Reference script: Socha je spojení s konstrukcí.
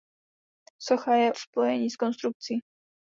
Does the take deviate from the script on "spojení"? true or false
false